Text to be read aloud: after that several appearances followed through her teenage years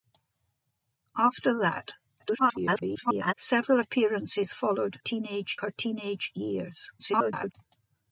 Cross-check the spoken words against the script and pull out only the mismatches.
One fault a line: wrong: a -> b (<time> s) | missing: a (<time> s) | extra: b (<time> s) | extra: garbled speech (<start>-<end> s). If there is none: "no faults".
extra: garbled speech (2.2-3.3 s)
wrong: through -> teenage (5.0 s)
extra: garbled speech (7.0-7.5 s)